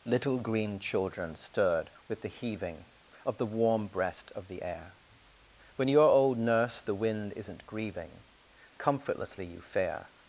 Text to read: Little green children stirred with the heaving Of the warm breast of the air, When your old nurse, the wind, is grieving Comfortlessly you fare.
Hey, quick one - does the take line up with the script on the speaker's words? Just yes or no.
no